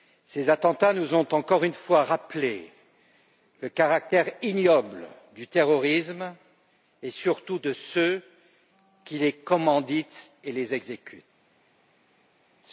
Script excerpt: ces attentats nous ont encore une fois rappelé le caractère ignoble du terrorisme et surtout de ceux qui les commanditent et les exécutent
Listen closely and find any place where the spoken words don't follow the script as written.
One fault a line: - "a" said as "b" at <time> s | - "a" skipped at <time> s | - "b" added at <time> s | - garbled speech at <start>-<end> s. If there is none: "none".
none